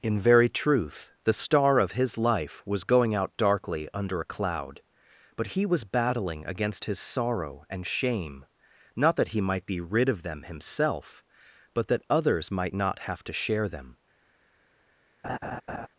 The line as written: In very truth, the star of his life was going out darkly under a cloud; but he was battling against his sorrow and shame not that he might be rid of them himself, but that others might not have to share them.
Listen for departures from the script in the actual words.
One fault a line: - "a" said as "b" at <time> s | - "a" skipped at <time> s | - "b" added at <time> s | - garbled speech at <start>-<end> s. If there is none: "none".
none